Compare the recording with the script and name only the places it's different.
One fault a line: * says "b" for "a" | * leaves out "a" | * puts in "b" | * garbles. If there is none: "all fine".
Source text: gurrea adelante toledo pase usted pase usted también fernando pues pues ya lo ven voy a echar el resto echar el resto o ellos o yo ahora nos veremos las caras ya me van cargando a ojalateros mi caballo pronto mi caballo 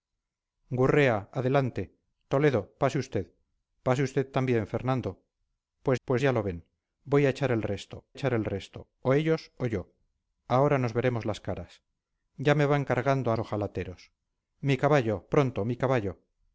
all fine